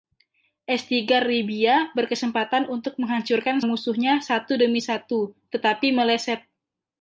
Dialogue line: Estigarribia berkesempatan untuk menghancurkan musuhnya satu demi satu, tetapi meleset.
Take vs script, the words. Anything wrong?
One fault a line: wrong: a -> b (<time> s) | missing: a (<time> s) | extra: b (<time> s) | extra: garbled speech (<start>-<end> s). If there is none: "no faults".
no faults